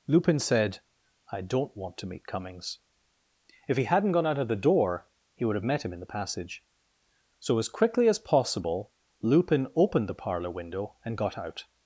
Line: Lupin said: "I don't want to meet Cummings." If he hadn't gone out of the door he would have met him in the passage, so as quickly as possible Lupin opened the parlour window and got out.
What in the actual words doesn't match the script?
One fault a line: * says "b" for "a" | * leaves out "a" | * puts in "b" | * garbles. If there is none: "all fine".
all fine